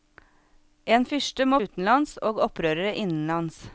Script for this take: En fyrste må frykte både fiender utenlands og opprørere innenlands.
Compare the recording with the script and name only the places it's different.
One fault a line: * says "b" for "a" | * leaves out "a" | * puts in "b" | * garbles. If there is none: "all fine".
* leaves out "frykte både fiender"